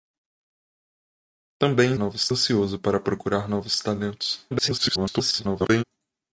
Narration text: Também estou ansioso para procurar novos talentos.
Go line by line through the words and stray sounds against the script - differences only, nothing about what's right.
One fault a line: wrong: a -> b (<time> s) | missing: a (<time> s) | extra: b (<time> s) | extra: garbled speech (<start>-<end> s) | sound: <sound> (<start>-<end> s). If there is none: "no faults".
wrong: estou -> novos (2.0 s)
extra: garbled speech (4.5-5.8 s)